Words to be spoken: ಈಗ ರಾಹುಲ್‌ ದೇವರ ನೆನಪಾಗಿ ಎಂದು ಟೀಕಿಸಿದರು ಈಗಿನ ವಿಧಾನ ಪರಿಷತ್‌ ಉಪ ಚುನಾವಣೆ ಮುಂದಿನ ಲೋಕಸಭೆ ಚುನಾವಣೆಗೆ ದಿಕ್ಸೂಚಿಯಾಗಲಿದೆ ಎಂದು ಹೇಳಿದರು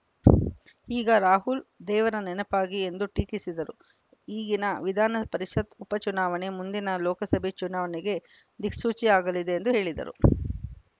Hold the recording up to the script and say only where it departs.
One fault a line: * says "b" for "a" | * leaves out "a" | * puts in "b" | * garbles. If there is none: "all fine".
all fine